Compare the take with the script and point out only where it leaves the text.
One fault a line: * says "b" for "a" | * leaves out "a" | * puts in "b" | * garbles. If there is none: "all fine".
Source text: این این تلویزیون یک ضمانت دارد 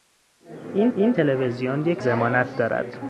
all fine